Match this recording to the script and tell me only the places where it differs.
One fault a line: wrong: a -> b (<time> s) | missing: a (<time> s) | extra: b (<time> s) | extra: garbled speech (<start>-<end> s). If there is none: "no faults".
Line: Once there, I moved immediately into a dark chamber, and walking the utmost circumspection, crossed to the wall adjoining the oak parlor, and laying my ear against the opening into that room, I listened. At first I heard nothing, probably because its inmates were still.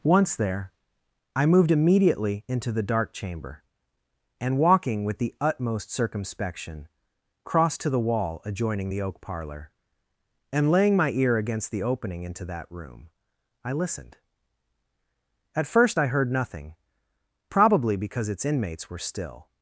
wrong: a -> the (2.7 s)
extra: with (5.0 s)